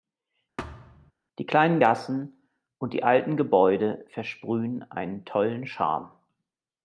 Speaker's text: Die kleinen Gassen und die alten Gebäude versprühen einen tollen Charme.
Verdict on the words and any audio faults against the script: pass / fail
fail